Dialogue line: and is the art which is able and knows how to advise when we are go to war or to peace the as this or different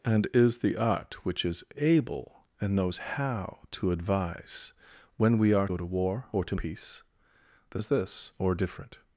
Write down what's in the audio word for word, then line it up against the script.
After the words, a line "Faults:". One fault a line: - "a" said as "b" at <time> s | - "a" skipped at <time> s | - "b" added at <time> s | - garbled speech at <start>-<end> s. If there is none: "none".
and is the art which is able and knows how to advise when we are go to war or to peace the as this or different
Faults:
none